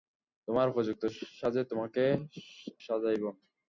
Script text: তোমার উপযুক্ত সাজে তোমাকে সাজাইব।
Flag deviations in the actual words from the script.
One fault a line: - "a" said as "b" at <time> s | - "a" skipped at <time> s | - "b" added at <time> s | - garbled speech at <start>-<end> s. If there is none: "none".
none